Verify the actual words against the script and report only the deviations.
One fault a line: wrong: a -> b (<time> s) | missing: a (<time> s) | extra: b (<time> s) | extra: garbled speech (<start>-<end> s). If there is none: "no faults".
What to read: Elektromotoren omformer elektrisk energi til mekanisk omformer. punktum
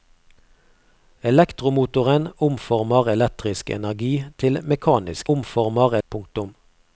no faults